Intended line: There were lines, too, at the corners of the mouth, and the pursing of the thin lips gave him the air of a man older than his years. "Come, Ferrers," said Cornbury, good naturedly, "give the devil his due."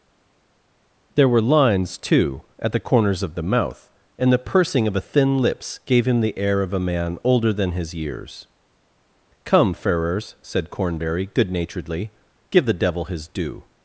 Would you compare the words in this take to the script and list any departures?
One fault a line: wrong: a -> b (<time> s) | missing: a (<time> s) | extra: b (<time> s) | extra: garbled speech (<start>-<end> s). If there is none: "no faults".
wrong: the -> a (5.0 s)